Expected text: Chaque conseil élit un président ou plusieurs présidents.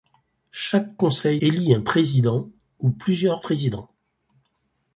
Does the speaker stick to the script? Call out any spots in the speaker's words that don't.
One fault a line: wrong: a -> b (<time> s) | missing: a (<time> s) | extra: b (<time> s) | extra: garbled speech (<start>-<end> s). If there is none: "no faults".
no faults